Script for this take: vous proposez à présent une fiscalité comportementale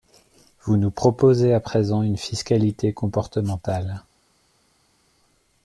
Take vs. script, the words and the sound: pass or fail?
fail